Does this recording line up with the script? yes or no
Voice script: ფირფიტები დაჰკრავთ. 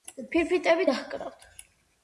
yes